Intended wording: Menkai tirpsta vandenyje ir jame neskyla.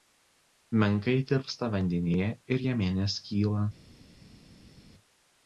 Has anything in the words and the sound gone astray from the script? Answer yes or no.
no